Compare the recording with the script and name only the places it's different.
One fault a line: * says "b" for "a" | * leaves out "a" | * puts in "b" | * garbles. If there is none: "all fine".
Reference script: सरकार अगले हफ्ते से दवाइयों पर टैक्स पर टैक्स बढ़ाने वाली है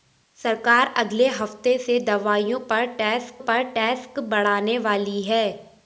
all fine